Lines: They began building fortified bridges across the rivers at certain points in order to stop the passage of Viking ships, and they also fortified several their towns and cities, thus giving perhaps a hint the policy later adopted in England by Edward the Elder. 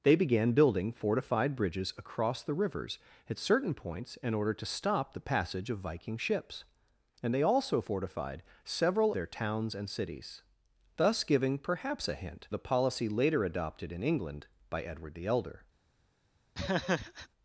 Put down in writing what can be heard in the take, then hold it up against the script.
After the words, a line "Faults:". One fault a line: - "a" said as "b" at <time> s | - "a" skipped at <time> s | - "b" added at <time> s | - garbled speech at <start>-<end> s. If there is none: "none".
They began building fortified bridges across the rivers at certain points in order to stop the passage of Viking ships, and they also fortified several their towns and cities, thus giving perhaps a hint the policy later adopted in England by Edward the Elder.
Faults:
none